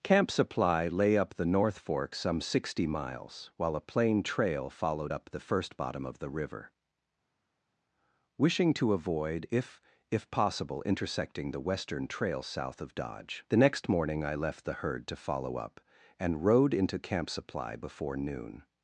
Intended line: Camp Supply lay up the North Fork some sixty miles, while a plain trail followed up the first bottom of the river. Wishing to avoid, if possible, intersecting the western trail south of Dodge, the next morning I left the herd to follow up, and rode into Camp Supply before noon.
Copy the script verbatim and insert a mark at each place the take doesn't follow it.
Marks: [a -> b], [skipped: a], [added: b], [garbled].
Camp Supply lay up the North Fork some sixty miles, while a plain trail followed up the first bottom of the river. Wishing to avoid, if [added: if] possible, intersecting the western trail south of Dodge, the next morning I left the herd to follow up, and rode into Camp Supply before noon.